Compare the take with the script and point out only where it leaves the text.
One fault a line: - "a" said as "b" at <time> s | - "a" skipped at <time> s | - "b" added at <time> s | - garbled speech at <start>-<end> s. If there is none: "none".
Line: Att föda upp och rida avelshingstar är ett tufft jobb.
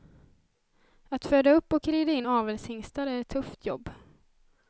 - "in" added at 2.1 s